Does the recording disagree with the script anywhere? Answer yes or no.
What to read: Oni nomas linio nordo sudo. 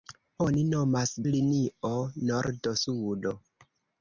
no